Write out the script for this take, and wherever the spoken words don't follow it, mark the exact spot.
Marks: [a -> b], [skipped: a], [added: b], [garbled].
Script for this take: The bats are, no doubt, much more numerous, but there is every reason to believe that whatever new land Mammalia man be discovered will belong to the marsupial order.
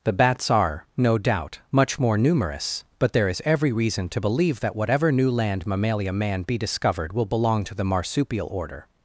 The bats are, no doubt, much more numerous, but there is every reason to believe that whatever new land Mammalia man be discovered will belong to the marsupial order.